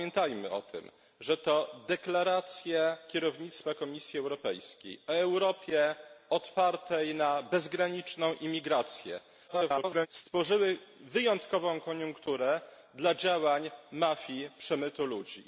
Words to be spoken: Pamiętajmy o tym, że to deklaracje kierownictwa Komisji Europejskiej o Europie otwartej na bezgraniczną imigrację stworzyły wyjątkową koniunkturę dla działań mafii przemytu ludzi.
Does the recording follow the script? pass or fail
fail